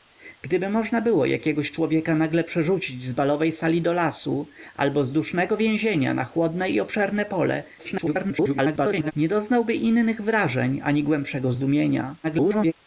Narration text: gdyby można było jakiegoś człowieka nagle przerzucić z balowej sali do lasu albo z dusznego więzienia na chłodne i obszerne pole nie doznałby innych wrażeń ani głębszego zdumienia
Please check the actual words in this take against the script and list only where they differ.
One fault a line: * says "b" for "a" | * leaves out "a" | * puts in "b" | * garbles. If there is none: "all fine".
* garbles
* garbles